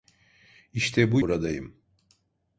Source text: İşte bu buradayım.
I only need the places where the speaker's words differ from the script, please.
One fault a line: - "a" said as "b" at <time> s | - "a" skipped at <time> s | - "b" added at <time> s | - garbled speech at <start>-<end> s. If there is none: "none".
none